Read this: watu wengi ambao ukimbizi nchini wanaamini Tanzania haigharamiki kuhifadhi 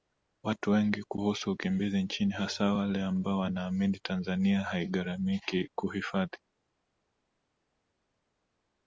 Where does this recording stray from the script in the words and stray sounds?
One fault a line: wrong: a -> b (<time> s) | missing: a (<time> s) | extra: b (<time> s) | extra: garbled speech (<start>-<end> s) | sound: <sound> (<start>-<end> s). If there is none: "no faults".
wrong: ambao -> kuhusu (1.0 s)
extra: hasa wale ambao (2.3 s)